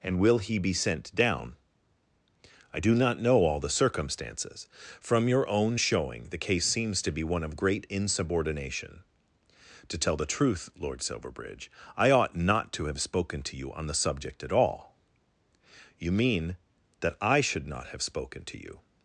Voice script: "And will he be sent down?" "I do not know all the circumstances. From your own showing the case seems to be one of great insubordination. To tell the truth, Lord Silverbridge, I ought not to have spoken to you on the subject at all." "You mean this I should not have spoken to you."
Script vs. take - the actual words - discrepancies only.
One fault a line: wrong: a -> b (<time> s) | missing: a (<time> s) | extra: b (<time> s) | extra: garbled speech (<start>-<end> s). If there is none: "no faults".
wrong: this -> that (17.0 s)